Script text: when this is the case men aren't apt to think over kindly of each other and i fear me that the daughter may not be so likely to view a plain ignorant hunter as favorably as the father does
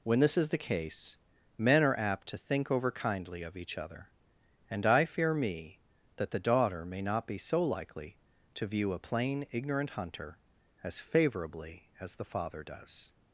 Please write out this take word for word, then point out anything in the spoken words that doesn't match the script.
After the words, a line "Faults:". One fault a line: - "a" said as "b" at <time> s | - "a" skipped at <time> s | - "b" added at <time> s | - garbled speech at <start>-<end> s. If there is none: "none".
when this is the case men are apt to think over kindly of each other and i fear me that the daughter may not be so likely to view a plain ignorant hunter as favorably as the father does
Faults:
- "aren't" said as "are" at 1.8 s